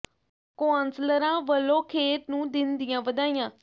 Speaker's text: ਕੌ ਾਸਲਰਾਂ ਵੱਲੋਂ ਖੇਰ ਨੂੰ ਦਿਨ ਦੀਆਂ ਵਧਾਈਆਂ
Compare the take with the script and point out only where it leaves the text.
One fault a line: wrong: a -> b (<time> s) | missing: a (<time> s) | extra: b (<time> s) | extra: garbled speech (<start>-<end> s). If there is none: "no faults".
no faults